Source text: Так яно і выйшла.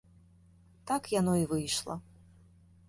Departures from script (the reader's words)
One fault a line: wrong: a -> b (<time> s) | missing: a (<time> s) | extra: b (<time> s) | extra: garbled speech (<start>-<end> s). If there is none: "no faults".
no faults